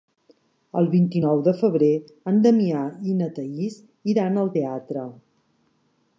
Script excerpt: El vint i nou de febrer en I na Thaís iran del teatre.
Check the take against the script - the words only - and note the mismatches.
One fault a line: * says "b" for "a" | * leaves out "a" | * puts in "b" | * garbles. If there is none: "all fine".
* puts in "Damià"
* says "al" for "del"